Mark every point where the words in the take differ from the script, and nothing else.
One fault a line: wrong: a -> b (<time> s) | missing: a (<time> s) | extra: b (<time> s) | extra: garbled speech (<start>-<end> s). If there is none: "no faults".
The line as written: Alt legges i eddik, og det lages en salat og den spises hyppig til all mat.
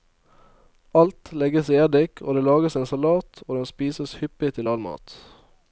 no faults